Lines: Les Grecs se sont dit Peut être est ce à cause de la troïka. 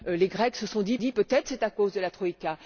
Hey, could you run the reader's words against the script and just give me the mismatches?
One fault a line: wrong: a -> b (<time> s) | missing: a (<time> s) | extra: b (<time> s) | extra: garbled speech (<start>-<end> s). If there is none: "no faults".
extra: dit (1.0 s)